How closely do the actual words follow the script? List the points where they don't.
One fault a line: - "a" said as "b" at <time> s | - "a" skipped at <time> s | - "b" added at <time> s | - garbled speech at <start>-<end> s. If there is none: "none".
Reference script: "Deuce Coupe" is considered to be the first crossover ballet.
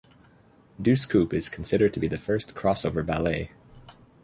none